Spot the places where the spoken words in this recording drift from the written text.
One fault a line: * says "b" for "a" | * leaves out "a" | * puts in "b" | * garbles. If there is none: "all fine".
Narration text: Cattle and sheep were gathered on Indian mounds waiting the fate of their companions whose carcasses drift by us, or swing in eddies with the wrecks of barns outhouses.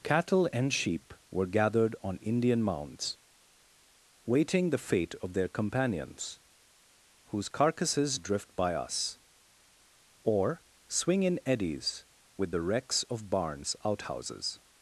all fine